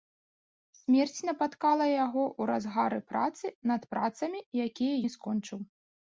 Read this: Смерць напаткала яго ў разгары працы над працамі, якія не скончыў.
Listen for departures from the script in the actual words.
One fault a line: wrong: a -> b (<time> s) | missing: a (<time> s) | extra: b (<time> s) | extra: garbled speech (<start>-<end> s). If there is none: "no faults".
no faults